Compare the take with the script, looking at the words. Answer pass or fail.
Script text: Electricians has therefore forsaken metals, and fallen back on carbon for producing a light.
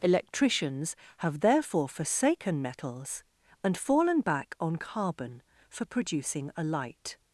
fail